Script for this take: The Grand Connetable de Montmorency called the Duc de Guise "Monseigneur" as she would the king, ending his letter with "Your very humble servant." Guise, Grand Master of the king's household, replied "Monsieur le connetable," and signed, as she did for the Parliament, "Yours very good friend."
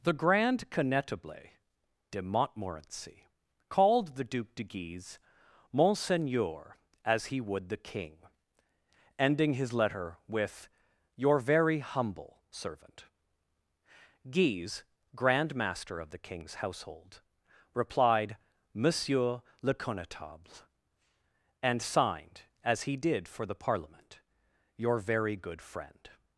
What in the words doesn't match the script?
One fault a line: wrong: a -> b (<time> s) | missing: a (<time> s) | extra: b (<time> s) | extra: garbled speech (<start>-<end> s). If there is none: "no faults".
wrong: she -> he (7.2 s)
wrong: she -> he (22.8 s)
wrong: Yours -> Your (24.8 s)